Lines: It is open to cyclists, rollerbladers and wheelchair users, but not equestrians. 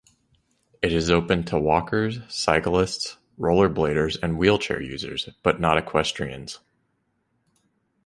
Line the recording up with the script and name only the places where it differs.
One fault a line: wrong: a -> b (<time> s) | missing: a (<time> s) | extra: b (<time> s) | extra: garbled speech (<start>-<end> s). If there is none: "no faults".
extra: walkers (1.6 s)